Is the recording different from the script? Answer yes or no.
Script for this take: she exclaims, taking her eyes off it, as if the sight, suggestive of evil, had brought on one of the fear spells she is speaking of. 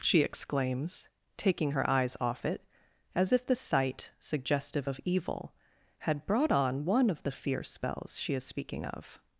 no